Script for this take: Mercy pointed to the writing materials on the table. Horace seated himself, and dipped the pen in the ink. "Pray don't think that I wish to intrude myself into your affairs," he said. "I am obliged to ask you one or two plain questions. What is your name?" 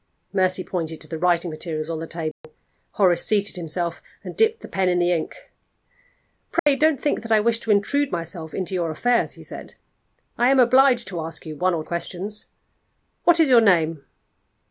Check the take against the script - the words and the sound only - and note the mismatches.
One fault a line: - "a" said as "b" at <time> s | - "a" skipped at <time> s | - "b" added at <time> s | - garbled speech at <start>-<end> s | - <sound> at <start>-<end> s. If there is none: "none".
- dropout at 2.3-2.4 s
- dropout at 6.6-6.7 s
- "two plain" skipped at 11.8 s